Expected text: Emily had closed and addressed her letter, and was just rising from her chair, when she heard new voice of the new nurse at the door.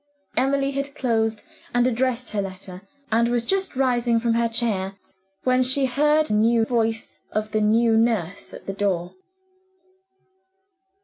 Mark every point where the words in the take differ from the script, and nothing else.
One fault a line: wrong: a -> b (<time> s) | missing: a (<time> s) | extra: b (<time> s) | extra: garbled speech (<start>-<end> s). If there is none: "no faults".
no faults